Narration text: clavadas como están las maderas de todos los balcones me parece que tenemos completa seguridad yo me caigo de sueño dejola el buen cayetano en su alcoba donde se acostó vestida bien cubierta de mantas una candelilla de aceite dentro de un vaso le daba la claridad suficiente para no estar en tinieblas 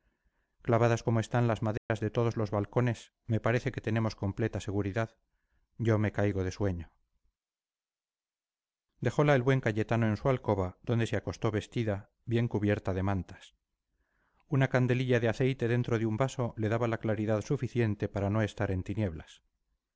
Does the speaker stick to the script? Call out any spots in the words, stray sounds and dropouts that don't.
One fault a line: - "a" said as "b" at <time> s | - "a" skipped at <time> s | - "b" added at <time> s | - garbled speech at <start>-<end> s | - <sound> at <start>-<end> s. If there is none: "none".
- dropout at 1.8-1.9 s